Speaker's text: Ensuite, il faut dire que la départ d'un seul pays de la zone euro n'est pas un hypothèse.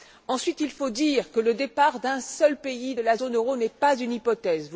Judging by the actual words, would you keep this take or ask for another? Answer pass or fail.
fail